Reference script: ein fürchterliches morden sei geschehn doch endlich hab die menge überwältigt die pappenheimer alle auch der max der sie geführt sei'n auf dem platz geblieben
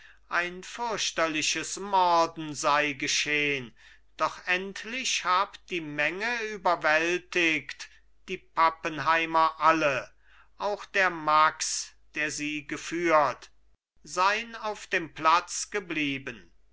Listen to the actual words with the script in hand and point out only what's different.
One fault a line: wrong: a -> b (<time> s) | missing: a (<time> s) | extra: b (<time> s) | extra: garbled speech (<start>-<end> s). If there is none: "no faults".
no faults